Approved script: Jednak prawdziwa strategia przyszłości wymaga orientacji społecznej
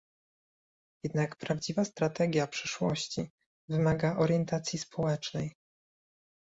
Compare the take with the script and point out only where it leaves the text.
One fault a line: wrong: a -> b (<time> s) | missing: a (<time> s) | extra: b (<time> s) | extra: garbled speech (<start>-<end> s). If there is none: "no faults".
no faults